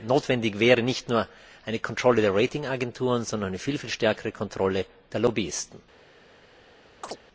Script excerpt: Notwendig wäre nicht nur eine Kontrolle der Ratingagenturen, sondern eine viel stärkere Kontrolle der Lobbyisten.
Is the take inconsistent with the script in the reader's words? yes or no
no